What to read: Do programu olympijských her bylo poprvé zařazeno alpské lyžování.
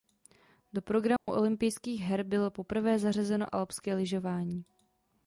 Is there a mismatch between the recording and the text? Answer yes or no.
no